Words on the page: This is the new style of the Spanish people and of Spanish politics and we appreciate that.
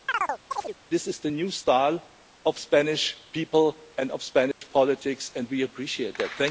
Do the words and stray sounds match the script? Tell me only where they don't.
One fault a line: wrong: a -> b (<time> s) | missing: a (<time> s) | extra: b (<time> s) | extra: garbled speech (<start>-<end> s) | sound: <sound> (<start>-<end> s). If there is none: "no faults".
sound: chirp (0.1-0.8 s)
sound: dropout (4.5-4.6 s)